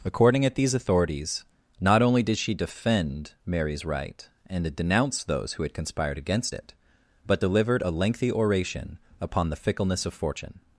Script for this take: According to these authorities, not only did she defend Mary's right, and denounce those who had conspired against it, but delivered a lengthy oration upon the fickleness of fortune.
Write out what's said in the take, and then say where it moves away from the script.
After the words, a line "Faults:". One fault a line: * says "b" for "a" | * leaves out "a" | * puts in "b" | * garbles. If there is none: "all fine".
According at these authorities, not only did she defend Mary's right, and denounce those who had conspired against it, but delivered a lengthy oration upon the fickleness of fortune.
Faults:
* says "at" for "to"